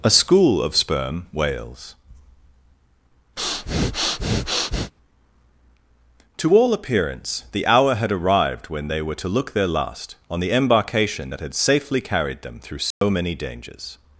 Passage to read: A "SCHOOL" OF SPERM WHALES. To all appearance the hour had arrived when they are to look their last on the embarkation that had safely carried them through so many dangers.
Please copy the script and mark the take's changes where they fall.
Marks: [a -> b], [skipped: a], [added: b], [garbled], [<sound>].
A "SCHOOL" OF SPERM WHALES. [breath] To all appearance the hour had arrived when they [are -> were] to look their last on the embarkation that had safely carried them through so [dropout] many dangers.